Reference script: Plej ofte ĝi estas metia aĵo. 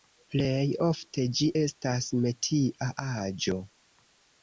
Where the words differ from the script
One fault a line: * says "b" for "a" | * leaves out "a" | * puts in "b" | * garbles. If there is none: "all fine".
all fine